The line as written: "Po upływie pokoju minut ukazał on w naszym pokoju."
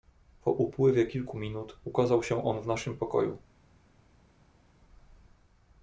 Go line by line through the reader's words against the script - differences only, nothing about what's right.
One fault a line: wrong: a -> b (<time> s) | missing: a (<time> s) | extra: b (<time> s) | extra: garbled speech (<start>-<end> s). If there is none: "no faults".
wrong: pokoju -> kilku (1.1 s)
extra: się (2.2 s)